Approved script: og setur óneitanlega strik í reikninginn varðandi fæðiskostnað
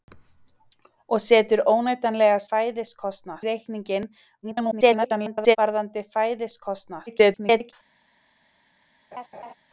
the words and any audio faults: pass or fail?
fail